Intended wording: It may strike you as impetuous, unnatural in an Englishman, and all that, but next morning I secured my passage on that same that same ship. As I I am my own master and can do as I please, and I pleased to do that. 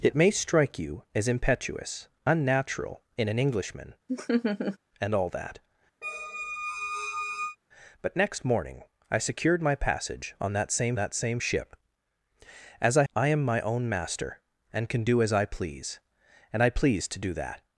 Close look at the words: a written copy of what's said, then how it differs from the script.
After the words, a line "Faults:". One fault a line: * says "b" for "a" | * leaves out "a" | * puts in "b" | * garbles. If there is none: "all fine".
It may strike you as impetuous, unnatural in an Englishman, and all that, but next morning I secured my passage on that same that same ship. As I I am my own master and can do as I please, and I pleased to do that.
Faults:
all fine